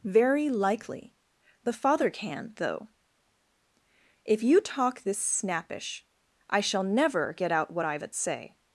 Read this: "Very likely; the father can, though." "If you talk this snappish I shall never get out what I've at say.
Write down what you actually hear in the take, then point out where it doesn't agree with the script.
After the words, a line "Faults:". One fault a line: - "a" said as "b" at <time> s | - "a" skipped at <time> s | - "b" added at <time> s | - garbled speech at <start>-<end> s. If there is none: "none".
"Very likely; the father can, though." "If you talk this snappish I shall never get out what I've at say.
Faults:
none